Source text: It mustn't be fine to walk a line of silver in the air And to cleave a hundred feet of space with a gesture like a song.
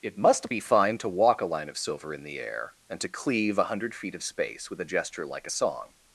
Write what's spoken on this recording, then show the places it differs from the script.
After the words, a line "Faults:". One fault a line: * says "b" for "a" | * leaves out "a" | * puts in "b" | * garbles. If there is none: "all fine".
It must be fine to walk a line of silver in the air And to cleave a hundred feet of space with a gesture like a song.
Faults:
* says "must" for "mustn't"